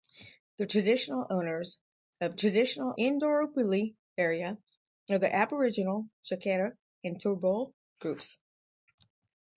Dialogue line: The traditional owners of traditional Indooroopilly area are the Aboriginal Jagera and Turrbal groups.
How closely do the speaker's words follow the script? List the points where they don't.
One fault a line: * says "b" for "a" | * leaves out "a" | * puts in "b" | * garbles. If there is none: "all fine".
all fine